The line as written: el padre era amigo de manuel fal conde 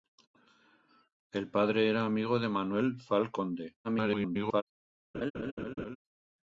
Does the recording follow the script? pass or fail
fail